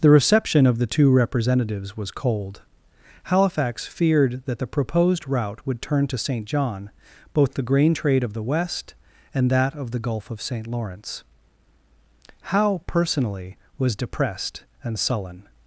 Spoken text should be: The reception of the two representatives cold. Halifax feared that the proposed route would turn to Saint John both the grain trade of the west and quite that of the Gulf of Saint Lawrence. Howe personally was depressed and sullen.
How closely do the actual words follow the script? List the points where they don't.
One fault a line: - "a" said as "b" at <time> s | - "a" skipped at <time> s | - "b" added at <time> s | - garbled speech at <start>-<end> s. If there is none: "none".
- "was" added at 1.9 s
- "quite" skipped at 9.5 s